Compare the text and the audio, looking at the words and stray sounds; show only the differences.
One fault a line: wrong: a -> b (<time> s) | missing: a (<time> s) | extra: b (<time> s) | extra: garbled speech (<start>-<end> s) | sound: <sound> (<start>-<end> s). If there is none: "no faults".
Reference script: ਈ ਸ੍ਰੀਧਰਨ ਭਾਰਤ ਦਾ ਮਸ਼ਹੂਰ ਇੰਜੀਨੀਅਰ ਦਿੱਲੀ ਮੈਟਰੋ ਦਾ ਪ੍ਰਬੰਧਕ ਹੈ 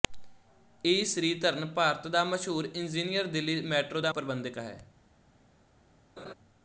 sound: laugh (6.2-6.3 s)